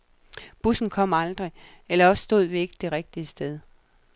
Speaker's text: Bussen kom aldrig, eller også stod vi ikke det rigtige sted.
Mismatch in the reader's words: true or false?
false